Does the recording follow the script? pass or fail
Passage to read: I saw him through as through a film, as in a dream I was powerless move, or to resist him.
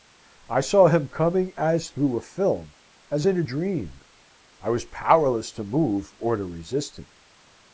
fail